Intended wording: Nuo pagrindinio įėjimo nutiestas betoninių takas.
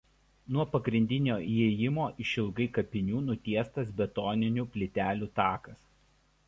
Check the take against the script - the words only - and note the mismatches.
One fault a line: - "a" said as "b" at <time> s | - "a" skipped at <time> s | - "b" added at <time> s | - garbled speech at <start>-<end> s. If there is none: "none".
- "išilgai kapinių" added at 2.2 s
- "plytelių" added at 4.7 s